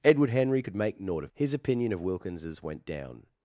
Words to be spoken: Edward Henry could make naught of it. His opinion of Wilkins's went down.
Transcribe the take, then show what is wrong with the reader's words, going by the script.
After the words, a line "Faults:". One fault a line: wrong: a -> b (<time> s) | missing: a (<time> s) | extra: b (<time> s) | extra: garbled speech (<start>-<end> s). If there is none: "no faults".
Edward Henry could make naught of. His opinion of Wilkins's went down.
Faults:
missing: it (1.3 s)